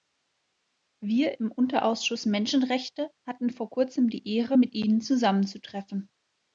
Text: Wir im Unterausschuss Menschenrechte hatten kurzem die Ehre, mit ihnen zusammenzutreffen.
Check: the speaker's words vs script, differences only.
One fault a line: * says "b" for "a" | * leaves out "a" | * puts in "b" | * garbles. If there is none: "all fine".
* puts in "vor"